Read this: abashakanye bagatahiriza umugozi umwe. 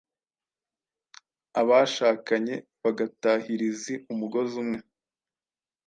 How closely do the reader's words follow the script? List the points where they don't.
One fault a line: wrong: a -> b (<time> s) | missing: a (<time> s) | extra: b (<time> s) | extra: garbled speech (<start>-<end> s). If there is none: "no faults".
no faults